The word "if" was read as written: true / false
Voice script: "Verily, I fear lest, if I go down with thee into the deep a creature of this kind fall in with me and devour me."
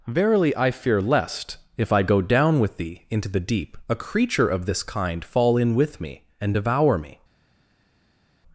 true